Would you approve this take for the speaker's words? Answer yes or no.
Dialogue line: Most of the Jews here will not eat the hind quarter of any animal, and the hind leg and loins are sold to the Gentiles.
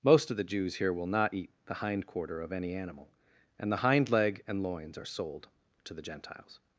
yes